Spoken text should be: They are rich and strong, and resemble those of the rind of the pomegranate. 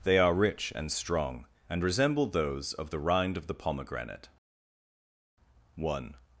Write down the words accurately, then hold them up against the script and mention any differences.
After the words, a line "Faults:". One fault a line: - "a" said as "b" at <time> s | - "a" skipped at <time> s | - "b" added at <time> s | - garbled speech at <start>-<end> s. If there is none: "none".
They are rich and strong, and resemble those of the rind of the pomegranate. One
Faults:
- "One" added at 5.8 s